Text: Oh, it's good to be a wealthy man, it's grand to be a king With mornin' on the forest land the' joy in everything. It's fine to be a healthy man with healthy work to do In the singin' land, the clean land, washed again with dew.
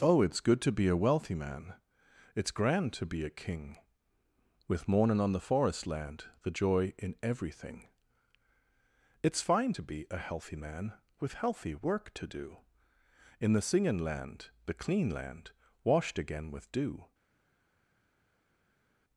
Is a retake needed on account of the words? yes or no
no